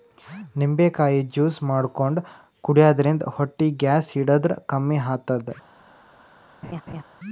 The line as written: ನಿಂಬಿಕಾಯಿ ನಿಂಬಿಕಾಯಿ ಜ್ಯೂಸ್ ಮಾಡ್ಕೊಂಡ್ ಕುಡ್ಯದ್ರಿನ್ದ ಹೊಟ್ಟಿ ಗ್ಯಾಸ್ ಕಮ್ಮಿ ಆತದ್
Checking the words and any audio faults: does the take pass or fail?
fail